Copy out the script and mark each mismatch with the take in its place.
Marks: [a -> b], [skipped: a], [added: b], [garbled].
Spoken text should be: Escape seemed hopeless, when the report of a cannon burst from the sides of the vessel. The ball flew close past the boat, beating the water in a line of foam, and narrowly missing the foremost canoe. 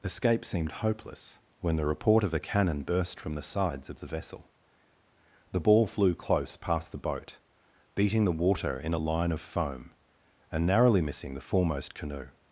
Escape seemed hopeless, when the report of a cannon burst from the sides of the vessel. The ball flew close past the boat, beating the water in a line of foam, and narrowly missing the foremost canoe.